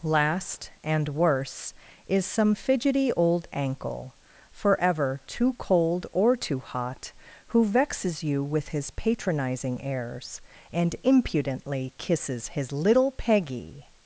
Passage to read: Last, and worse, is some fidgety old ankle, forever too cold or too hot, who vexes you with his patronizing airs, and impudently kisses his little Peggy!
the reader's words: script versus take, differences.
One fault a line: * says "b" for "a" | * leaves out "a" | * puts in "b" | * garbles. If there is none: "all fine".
all fine